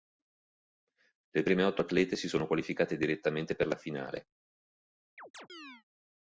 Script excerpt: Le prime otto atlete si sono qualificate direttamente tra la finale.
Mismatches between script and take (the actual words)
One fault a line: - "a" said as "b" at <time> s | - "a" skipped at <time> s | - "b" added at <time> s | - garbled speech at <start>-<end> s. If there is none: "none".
- "tra" said as "per" at 3.6 s